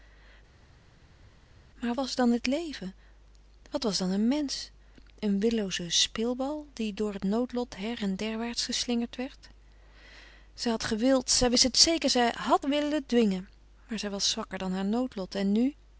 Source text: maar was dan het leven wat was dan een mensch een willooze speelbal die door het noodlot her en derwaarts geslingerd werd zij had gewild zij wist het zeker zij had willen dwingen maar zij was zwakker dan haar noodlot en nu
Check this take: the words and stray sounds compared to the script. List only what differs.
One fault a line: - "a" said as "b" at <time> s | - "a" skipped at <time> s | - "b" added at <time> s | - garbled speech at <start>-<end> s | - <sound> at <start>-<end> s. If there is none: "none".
none